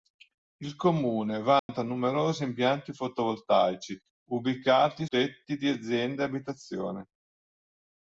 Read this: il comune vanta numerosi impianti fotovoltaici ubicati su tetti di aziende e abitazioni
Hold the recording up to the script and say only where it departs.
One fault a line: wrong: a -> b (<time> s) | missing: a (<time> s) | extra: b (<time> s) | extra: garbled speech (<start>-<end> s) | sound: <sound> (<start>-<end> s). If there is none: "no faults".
sound: dropout (1.6-1.7 s)
missing: su (5.0 s)